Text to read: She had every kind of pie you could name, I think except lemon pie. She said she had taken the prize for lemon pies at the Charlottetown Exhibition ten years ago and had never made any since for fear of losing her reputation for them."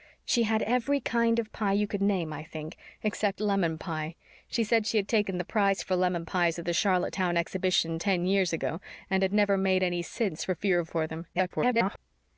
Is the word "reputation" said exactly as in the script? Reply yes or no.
no